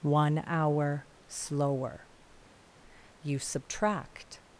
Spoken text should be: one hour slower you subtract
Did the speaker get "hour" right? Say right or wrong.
right